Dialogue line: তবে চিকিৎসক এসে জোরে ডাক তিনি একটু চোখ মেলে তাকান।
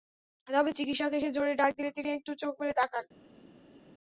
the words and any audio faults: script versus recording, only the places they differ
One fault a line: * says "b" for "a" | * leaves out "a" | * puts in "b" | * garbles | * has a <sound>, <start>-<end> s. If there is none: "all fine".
* puts in "দিলে"